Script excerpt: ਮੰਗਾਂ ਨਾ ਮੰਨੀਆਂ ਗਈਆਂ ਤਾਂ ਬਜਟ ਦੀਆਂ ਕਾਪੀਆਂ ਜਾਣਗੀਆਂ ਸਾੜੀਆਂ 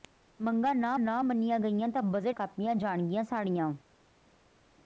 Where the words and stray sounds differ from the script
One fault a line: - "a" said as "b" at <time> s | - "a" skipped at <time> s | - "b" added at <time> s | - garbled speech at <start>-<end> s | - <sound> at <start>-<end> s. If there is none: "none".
- "ਨਾ" added at 1.0 s
- "ਦੀਆਂ" skipped at 2.4 s